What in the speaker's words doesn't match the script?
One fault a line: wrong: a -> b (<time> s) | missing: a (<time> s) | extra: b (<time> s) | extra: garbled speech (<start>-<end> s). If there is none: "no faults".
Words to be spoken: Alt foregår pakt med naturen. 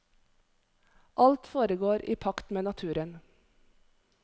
extra: i (2.0 s)